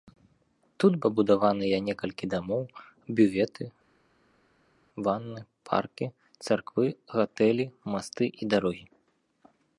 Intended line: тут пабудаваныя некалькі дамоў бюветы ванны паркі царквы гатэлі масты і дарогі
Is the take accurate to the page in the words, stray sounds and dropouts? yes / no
yes